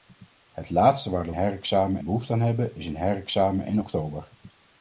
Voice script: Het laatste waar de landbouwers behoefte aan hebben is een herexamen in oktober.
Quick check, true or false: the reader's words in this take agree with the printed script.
false